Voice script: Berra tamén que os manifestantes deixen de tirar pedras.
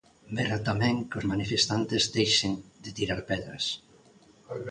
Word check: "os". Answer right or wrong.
right